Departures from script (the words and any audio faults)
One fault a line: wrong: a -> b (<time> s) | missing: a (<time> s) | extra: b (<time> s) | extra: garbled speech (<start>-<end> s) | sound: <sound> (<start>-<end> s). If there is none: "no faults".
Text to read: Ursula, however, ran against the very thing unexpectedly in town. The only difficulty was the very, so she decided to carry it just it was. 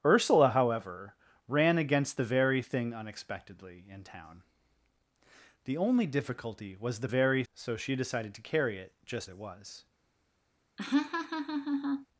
sound: laugh (10.8-12.1 s)